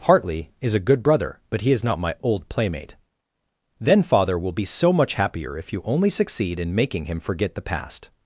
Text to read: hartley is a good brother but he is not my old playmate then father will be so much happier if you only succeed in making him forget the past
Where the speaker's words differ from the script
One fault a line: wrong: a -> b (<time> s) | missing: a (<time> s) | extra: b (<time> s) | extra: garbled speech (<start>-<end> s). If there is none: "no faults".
no faults